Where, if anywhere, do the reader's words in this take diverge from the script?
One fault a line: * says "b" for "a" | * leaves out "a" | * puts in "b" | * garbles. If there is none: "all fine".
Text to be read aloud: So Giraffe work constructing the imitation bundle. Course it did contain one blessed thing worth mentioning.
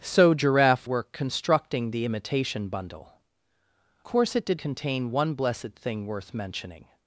all fine